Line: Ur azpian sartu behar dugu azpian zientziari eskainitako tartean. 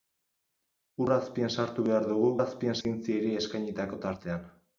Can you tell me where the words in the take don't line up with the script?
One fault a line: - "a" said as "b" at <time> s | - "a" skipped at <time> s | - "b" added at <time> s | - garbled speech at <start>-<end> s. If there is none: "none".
none